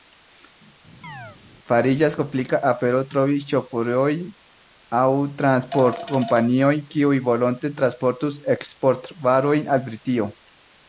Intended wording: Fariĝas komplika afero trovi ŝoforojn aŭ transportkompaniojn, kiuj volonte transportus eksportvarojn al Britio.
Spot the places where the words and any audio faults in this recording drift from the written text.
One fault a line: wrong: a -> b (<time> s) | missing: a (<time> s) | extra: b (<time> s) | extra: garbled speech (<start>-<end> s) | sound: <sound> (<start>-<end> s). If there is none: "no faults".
sound: chirp (1.0-1.4 s)